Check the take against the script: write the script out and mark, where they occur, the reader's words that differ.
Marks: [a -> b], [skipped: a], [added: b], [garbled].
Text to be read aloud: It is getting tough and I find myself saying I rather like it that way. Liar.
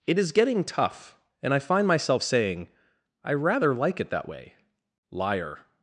It is getting tough and I find myself saying I rather like it that way. Liar.